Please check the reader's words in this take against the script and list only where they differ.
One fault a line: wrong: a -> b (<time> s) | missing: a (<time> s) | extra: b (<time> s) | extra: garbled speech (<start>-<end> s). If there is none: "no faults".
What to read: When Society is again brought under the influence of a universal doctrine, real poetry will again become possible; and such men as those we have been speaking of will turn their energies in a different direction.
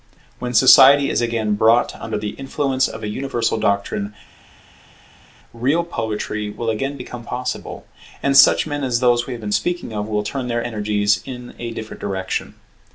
no faults